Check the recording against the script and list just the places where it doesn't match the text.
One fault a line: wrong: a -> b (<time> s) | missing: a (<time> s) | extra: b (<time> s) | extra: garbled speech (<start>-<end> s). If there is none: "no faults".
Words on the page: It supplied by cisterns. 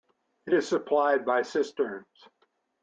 extra: is (0.5 s)